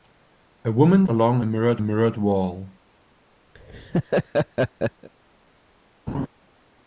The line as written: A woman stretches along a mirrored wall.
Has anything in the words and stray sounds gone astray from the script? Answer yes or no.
yes